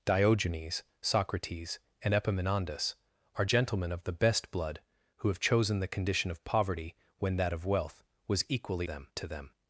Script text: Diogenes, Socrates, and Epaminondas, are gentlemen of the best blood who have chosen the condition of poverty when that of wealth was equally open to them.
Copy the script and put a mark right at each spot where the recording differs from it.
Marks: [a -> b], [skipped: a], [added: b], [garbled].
Diogenes, Socrates, and Epaminondas, are gentlemen of the best blood who have chosen the condition of poverty when that of wealth was equally [open -> them] to them.